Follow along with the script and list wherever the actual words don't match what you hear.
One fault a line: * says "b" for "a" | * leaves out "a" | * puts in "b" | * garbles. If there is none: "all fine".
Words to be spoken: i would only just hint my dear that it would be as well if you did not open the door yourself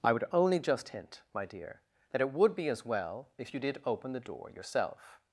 * leaves out "not"